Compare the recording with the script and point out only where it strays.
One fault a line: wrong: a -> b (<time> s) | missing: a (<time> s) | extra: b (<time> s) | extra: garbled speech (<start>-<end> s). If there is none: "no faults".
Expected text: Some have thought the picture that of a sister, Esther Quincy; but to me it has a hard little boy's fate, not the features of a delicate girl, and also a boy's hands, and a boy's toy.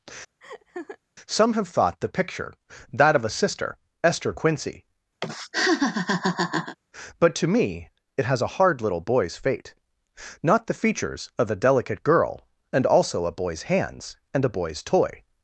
no faults